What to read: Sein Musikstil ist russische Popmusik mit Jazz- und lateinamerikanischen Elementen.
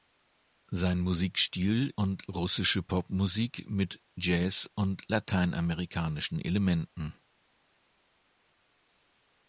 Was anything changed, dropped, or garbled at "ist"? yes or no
yes